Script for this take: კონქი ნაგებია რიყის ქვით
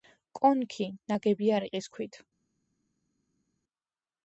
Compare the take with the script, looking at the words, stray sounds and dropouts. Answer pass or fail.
pass